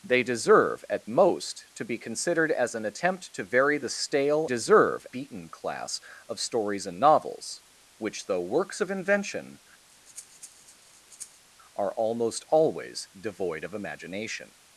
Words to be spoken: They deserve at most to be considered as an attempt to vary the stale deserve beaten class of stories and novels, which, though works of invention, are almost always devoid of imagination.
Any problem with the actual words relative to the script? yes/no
no